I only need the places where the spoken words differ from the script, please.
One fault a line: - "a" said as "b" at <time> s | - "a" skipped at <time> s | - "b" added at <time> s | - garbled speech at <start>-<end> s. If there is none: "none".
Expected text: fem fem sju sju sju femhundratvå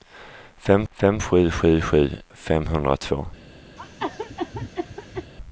none